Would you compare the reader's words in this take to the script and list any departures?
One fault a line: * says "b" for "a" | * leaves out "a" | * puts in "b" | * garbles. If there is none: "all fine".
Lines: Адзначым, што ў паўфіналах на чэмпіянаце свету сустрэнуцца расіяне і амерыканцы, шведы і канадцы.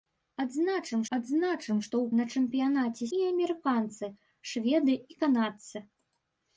* puts in "адзначым"
* leaves out "паўфіналах"
* leaves out "свету сустрэнуцца расіяне"